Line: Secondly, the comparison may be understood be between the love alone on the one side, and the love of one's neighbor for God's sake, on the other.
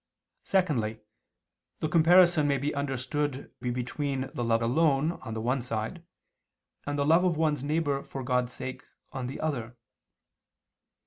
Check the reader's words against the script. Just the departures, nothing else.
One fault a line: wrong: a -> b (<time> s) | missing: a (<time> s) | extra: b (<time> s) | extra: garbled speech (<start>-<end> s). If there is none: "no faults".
no faults